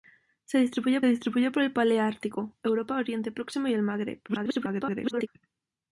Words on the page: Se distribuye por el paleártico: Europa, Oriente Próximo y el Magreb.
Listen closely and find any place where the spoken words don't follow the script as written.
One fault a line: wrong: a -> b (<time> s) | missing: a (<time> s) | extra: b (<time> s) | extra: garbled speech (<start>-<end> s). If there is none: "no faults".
extra: distribuye (1.1 s)
extra: garbled speech (4.3-5.3 s)